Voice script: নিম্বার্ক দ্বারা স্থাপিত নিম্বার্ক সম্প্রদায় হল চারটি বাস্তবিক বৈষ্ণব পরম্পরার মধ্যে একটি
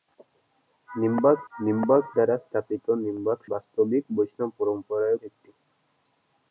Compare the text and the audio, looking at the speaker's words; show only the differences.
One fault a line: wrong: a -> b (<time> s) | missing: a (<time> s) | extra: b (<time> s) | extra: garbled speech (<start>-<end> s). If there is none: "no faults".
extra: নিম্বার্ক (1.5 s)
missing: সম্প্রদায় হল চারটি (3.4 s)
missing: মধ্যে (5.2 s)